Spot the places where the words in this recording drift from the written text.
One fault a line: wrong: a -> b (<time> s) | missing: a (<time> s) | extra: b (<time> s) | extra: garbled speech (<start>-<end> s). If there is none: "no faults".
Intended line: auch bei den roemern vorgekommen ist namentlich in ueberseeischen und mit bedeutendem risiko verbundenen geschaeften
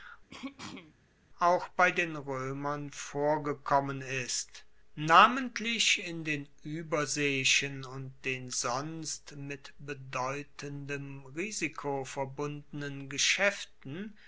extra: den (6.3 s)
extra: den sonst (8.3 s)